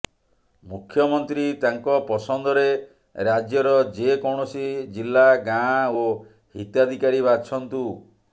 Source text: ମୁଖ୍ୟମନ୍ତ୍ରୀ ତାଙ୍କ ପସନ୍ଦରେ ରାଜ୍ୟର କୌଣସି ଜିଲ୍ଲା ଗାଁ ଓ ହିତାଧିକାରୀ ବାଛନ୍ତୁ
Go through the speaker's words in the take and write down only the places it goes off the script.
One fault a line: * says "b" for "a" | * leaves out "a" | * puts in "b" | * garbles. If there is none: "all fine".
* puts in "ଯେ"